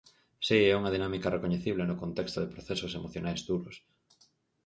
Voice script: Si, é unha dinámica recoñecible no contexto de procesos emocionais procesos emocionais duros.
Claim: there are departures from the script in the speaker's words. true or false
true